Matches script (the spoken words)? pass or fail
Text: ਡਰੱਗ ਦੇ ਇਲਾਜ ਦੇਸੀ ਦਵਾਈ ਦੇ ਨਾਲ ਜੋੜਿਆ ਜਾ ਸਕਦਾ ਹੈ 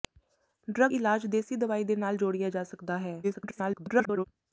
fail